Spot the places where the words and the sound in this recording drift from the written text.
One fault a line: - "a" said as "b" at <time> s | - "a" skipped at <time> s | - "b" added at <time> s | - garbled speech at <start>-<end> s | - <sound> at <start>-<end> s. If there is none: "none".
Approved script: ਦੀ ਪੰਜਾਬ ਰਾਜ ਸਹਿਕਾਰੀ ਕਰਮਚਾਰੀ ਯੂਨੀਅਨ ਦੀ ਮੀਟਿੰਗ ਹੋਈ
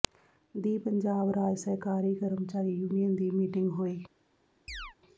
- chirp at 4.7-5.0 s